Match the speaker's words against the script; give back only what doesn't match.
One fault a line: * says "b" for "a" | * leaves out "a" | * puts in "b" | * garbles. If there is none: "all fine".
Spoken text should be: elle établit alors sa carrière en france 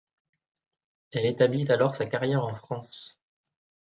all fine